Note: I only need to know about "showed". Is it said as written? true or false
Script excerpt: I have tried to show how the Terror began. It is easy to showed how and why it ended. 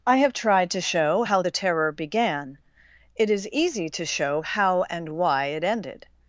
false